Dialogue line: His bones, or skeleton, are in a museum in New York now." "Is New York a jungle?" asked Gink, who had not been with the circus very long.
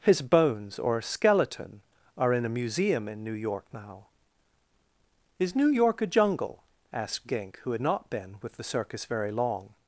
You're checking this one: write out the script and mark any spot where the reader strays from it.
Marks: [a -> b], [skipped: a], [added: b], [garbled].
His bones, or skeleton, are in a museum in New York now." "Is New York a jungle?" asked Gink, who had not been with the circus very long.